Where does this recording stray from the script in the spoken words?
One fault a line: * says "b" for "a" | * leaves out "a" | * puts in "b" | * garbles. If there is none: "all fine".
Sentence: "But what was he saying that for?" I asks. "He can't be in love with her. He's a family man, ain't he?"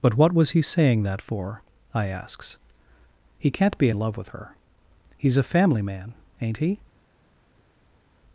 all fine